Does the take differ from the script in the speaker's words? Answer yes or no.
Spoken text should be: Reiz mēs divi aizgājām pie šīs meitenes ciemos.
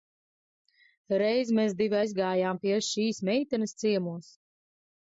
no